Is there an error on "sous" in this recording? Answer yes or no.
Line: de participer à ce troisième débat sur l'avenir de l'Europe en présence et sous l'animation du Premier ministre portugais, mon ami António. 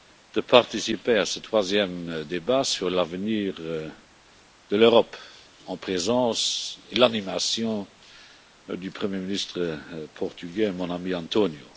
yes